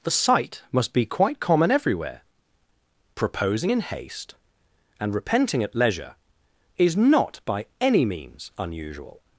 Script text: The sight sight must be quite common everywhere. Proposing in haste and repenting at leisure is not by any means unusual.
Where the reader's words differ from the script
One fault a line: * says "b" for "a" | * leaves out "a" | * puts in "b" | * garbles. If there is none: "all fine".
* leaves out "sight"